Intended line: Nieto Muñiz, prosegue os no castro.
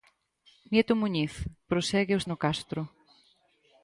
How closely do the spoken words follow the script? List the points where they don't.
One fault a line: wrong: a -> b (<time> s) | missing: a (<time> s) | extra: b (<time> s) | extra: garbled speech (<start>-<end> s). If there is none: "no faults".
no faults